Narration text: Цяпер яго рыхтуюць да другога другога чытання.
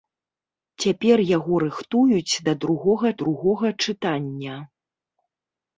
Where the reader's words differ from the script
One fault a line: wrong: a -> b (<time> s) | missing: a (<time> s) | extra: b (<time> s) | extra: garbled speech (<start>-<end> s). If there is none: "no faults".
no faults